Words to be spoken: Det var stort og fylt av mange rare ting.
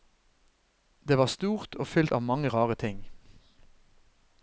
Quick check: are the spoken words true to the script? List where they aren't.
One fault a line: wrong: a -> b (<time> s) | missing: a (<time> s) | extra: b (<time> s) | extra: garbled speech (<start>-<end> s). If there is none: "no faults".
no faults